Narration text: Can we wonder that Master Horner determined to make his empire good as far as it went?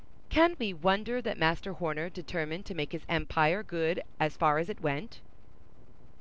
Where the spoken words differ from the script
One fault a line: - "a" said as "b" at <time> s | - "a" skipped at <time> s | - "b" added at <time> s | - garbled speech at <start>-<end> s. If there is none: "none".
none